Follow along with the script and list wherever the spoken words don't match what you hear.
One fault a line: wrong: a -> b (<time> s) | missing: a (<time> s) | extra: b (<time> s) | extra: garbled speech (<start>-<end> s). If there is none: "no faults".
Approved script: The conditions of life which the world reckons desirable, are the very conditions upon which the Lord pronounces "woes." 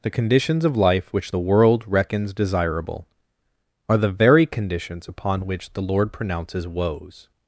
no faults